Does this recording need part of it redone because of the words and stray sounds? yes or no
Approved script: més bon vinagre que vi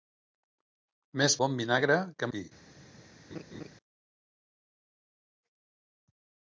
yes